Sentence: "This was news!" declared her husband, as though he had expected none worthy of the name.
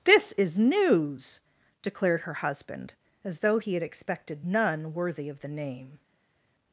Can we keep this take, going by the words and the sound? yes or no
no